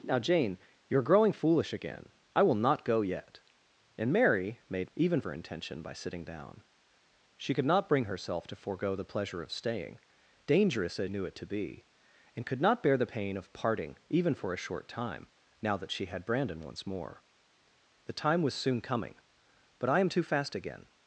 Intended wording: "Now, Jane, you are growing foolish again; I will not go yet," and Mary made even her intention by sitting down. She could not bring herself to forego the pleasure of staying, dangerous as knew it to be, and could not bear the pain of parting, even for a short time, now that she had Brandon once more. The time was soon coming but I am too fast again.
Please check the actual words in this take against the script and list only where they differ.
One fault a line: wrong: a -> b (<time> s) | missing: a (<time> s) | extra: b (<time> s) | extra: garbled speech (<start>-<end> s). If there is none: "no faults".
no faults